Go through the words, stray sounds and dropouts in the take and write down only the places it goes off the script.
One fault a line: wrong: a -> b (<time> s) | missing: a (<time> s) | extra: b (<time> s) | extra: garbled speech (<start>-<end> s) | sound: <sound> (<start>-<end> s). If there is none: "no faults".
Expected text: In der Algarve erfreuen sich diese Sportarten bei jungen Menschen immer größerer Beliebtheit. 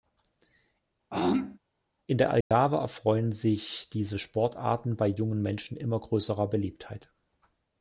sound: throat clearing (1.1-1.6 s)
sound: dropout (2.4-2.5 s)